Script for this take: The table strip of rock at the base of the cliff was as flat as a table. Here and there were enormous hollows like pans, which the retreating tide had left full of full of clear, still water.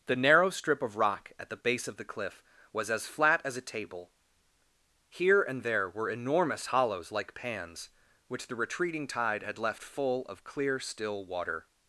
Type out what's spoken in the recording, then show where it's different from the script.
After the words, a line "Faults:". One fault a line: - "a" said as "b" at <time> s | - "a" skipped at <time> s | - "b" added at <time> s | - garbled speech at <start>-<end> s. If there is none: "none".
The narrow strip of rock at the base of the cliff was as flat as a table. Here and there were enormous hollows like pans, which the retreating tide had left full of clear, still water.
Faults:
- "table" said as "narrow" at 0.1 s
- "full of" skipped at 10.4 s